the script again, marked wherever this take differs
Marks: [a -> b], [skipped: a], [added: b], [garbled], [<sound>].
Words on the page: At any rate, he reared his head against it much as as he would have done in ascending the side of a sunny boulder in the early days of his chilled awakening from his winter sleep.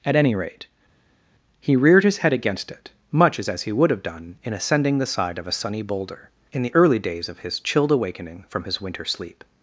At any rate, he reared his head against it much as as he would have done in ascending the side of a sunny boulder in the early days of his chilled awakening from his winter sleep.